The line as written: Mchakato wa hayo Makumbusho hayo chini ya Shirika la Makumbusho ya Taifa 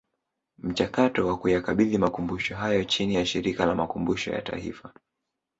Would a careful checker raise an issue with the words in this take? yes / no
yes